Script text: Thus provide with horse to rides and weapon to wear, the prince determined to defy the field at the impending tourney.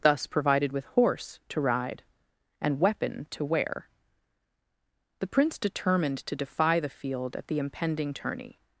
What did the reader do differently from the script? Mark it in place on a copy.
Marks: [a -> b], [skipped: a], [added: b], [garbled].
Thus [provide -> provided] with horse to [rides -> ride] and weapon to wear, the prince determined to defy the field at the impending tourney.